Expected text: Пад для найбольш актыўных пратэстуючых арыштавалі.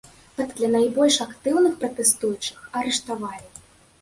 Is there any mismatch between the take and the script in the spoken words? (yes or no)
no